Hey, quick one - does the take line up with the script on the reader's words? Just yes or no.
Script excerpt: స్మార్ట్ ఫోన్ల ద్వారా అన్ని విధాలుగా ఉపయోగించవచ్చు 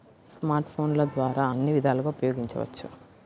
yes